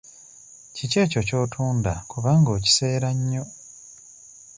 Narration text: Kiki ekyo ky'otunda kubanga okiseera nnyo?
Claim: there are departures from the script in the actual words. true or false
false